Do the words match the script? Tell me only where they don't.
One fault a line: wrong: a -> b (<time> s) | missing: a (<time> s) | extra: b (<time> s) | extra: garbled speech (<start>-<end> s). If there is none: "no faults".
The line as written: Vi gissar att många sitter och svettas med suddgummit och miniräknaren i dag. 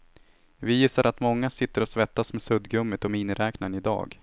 no faults